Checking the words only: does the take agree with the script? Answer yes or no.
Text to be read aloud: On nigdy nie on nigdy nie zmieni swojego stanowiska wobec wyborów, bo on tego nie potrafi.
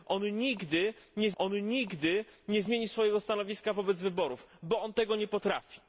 yes